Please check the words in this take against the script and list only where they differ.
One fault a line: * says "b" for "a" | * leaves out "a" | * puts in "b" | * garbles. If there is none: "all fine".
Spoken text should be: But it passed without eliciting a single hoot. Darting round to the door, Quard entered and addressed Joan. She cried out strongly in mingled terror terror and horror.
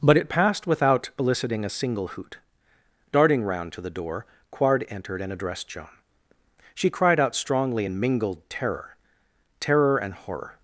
all fine